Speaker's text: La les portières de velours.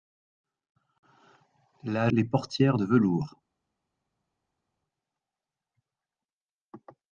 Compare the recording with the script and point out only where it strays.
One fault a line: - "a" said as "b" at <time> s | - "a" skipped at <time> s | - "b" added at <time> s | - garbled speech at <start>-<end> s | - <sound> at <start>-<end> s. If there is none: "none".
none